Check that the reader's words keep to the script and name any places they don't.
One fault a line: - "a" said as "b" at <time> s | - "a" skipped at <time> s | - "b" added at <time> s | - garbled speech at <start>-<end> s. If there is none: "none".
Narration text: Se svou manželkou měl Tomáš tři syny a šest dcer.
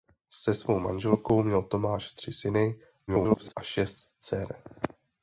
- garbled speech at 3.1-3.5 s